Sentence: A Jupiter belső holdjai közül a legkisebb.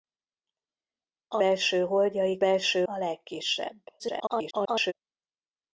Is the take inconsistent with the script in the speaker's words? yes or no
yes